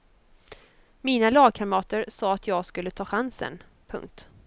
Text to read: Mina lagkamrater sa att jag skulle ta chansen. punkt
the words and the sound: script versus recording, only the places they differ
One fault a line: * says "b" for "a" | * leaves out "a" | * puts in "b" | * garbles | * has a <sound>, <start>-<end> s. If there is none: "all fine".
all fine